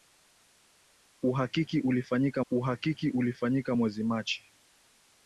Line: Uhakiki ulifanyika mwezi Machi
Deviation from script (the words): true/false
true